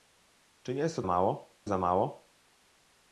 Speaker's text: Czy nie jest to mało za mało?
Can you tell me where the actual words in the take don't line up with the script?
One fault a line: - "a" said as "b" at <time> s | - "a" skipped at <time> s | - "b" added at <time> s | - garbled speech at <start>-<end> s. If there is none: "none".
none